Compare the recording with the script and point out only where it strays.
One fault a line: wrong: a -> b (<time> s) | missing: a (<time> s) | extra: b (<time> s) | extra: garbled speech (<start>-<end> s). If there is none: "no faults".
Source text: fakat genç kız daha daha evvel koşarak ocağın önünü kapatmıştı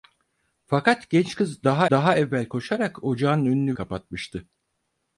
no faults